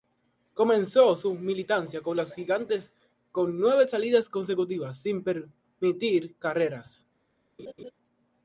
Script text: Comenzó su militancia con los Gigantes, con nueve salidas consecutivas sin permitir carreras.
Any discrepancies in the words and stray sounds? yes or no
yes